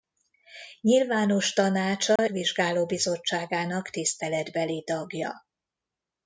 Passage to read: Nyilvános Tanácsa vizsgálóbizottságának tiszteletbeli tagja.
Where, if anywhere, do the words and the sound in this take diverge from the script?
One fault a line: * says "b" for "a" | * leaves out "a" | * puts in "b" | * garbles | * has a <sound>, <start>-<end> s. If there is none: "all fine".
* has a dropout, 2.2-2.2 s